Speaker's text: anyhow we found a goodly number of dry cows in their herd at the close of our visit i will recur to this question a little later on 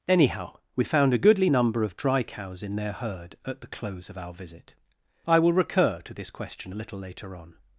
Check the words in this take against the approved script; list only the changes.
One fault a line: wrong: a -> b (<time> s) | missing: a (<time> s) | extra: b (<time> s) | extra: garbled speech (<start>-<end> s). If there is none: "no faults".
no faults